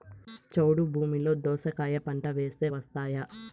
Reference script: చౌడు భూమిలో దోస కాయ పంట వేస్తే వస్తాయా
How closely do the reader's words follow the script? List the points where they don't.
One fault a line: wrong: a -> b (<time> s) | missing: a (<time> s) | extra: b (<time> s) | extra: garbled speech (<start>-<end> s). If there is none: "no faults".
no faults